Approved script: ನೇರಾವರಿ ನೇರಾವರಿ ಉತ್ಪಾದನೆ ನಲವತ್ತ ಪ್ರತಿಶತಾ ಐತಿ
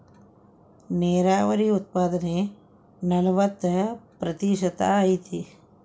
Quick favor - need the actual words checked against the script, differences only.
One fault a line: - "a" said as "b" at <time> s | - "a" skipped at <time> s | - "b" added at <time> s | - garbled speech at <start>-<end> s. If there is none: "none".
- "ನೇರಾವರಿ" skipped at 1.7 s